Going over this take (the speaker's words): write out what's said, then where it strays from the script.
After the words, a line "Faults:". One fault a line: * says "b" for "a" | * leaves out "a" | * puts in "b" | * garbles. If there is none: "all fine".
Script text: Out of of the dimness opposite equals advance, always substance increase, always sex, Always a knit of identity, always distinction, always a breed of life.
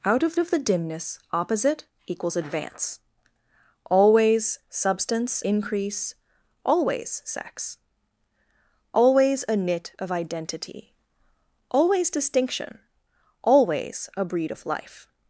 Out of of the dimness opposite equals advance, always substance increase, always sex, Always a knit of identity, always distinction, always a breed of life.
Faults:
all fine